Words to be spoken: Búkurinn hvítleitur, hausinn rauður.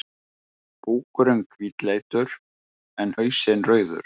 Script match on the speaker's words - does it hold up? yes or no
no